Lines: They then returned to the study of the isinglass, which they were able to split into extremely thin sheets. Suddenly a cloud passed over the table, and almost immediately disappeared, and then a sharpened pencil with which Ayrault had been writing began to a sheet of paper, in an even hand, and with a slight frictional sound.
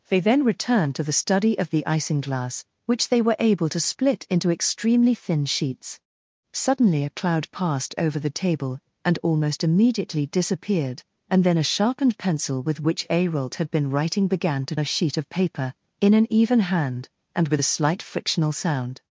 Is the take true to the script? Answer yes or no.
yes